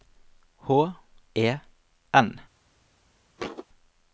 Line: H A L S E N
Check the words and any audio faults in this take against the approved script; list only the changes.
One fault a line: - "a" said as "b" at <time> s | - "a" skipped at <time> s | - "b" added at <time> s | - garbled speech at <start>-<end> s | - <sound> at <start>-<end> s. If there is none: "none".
- "A L S" skipped at 0.9 s
- thud at 3.4-3.7 s